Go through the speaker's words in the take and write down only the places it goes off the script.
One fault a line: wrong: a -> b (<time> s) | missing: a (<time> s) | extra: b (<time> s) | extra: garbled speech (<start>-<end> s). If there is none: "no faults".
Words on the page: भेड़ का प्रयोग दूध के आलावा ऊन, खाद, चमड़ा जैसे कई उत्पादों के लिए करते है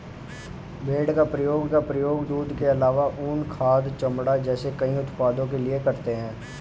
extra: का प्रयोग (1.7 s)